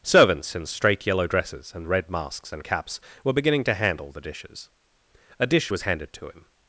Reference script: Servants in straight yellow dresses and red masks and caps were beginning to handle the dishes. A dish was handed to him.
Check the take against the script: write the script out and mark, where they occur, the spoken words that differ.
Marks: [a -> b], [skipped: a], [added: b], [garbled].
Servants in straight yellow dresses and red masks and caps were beginning to handle the dishes. A dish was handed to him.